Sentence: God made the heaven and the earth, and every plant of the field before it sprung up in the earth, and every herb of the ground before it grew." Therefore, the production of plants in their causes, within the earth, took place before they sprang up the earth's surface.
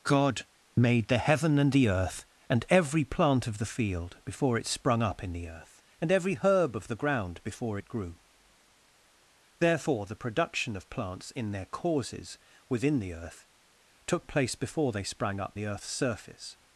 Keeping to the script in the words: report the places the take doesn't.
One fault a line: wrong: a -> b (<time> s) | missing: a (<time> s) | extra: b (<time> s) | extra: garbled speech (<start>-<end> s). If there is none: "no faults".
no faults